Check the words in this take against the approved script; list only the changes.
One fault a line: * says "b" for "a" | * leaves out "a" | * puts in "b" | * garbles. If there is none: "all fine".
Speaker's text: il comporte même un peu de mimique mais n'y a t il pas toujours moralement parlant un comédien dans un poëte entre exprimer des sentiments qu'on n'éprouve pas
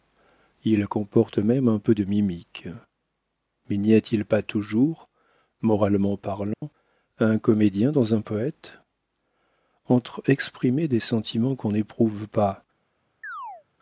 all fine